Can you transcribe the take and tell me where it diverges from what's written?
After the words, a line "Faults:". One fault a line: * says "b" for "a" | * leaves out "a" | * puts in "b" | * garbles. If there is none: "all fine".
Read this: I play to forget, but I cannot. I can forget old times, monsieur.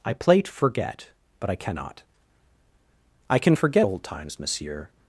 I play to forget, but I cannot. I can forget old times, monsieur.
Faults:
all fine